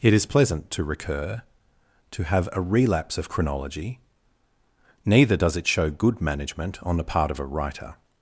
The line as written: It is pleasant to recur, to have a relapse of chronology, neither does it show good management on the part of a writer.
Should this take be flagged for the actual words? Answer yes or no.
no